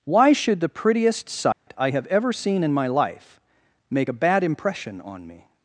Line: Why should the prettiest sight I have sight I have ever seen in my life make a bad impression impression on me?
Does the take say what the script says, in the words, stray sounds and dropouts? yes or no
no